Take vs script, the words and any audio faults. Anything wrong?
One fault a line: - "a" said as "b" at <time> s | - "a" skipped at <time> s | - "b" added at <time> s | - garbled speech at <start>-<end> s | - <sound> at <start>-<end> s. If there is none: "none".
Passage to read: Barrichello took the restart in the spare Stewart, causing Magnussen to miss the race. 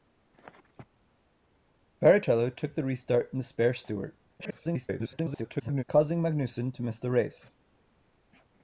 - garbled speech at 4.4-5.8 s